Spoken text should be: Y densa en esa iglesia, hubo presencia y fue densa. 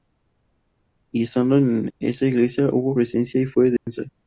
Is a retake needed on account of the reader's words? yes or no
yes